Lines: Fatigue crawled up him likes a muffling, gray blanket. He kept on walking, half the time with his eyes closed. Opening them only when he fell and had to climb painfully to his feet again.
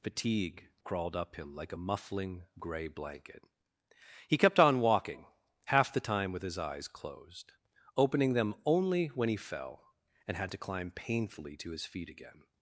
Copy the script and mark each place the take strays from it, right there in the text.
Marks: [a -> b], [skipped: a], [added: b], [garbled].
Fatigue crawled up him [likes -> like] a muffling, gray blanket. He kept on walking, half the time with his eyes closed. Opening them only when he fell and had to climb painfully to his feet again.